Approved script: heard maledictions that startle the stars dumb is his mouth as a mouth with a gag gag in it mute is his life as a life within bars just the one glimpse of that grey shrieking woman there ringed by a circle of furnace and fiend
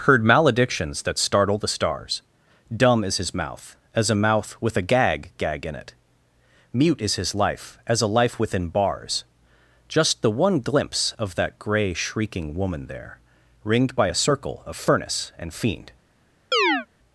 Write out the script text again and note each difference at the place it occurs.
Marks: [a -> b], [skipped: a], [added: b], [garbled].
heard maledictions that startle the stars dumb is his mouth as a mouth with a gag gag in it mute is his life as a life within bars just the one glimpse of that grey shrieking woman there ringed by a circle of furnace and fiend